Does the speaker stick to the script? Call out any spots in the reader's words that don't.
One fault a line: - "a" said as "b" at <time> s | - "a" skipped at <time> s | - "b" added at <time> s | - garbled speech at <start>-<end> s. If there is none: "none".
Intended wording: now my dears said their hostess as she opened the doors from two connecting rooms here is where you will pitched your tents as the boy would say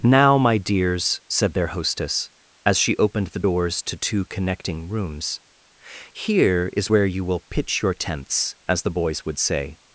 - "from" said as "to" at 3.8 s
- "pitched" said as "pitch" at 7.5 s
- "boy" said as "boys" at 8.9 s